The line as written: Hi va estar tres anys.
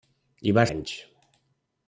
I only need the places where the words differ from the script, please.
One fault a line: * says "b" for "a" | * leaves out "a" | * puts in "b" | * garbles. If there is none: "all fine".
* leaves out "estar tres"